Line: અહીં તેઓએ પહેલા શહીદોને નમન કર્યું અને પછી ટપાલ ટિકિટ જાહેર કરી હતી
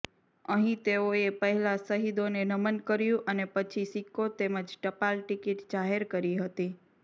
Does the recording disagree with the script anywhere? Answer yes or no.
yes